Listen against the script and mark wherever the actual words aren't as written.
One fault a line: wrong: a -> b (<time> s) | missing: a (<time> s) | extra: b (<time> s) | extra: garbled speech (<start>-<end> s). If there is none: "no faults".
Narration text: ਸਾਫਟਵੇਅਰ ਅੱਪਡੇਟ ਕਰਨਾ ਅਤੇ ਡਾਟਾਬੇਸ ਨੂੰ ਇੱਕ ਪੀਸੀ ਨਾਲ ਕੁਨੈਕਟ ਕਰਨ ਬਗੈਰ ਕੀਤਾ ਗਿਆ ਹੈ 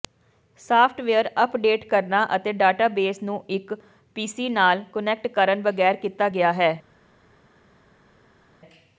no faults